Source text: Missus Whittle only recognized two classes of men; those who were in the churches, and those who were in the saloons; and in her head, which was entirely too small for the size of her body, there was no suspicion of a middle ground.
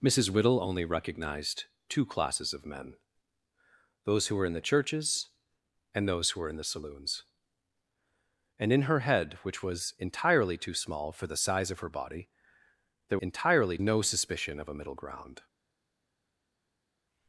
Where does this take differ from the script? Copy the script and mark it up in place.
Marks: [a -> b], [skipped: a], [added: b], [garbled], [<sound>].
Missus Whittle only recognized two classes of men; those who were in the churches, and those who were in the saloons; and in her head, which was entirely too small for the size of her body, there [was -> entirely] no suspicion of a middle ground.